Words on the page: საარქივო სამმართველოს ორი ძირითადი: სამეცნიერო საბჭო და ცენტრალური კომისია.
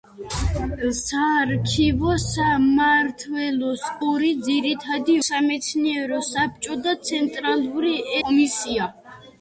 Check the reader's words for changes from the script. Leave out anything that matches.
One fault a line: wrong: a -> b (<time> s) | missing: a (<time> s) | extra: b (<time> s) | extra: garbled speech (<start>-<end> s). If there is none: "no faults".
no faults